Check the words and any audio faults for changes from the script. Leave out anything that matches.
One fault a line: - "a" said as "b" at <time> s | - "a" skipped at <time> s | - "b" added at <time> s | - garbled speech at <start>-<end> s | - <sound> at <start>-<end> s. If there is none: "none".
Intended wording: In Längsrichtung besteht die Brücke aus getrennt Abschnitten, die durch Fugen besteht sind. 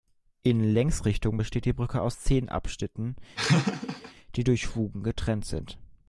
- "getrennt" said as "zehn" at 2.2 s
- laugh at 3.4-4.1 s
- "besteht" said as "getrennt" at 5.0 s